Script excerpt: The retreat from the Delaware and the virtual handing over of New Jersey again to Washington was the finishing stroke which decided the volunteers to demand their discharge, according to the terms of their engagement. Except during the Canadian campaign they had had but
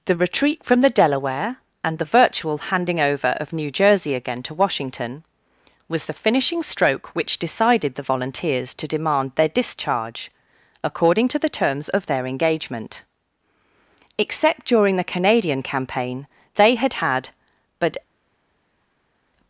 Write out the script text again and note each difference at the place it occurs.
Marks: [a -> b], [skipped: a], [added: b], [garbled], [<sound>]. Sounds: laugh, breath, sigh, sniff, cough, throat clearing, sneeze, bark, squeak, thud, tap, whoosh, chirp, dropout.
The retreat from the Delaware and the virtual handing over of New Jersey again to Washington was the finishing stroke which decided the volunteers to demand their discharge, according to the terms of their engagement. Except during the Canadian campaign they had had but